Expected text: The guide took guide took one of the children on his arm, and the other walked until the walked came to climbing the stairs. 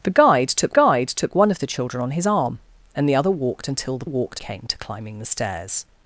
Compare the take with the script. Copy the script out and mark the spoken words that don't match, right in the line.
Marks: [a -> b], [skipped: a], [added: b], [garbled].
The guide took guide took one of the children on his arm, and the other walked until the walked came to climbing the stairs.